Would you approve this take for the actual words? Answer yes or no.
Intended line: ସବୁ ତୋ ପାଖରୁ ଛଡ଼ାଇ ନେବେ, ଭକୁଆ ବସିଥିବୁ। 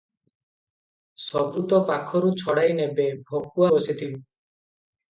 yes